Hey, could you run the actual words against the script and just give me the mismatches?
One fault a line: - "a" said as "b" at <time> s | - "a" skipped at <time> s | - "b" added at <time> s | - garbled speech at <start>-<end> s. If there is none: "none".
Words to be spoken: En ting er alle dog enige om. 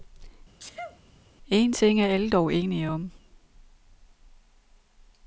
none